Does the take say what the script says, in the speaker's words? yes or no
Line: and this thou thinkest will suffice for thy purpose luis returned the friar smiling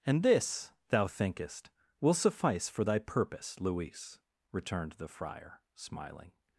yes